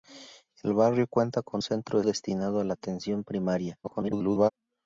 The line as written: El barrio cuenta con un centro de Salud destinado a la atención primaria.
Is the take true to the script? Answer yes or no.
no